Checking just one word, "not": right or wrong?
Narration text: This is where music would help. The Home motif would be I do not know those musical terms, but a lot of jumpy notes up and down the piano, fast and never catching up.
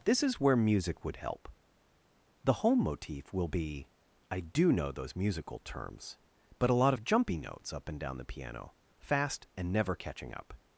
wrong